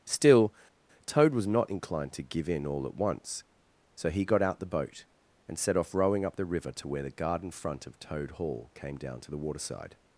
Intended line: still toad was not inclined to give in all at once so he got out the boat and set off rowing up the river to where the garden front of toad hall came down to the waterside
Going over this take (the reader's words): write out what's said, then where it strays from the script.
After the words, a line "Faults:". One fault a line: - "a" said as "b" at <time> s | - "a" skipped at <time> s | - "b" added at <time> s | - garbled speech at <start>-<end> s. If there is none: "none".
still toad was not inclined to give in all at once so he got out the boat and set off rowing up the river to where the garden front of toad hall came down to the waterside
Faults:
none